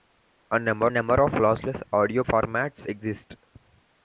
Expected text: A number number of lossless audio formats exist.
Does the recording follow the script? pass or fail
pass